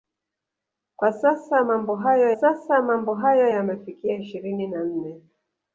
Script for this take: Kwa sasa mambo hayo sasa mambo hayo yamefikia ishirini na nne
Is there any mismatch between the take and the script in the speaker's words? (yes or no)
no